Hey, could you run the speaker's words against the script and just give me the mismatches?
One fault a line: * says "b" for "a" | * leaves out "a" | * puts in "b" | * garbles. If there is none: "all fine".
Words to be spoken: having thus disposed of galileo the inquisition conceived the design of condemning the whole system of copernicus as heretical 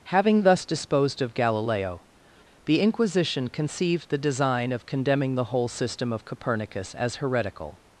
all fine